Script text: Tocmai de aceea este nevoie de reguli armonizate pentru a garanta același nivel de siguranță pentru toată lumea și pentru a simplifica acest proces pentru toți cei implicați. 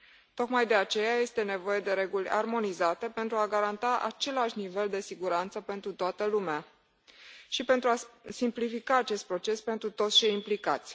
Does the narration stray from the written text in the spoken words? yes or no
no